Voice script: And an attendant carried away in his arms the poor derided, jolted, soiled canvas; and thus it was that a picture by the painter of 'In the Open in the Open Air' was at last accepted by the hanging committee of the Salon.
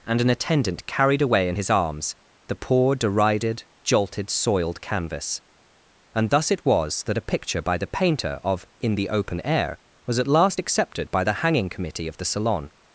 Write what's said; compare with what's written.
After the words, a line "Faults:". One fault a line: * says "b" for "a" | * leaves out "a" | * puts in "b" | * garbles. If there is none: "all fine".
And an attendant carried away in his arms the poor derided, jolted, soiled canvas; and thus it was that a picture by the painter of 'In the Open Air' was at last accepted by the hanging committee of the Salon.
Faults:
* leaves out "in the Open"